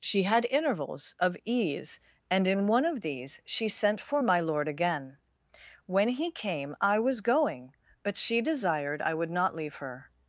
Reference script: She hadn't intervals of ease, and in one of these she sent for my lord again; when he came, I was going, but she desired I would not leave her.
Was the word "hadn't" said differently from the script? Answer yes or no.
yes